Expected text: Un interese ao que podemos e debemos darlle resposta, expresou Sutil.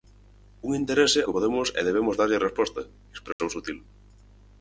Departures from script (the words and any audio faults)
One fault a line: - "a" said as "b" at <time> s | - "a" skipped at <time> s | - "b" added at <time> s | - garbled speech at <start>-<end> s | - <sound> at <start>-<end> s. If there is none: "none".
- "ao" skipped at 1.2 s
- dropout at 3.3-3.4 s